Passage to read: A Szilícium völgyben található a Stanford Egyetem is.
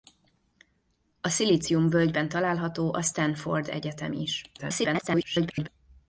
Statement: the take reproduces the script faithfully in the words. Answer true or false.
false